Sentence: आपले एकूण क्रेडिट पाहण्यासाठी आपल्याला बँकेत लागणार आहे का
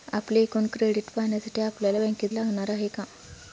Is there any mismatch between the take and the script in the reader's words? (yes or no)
no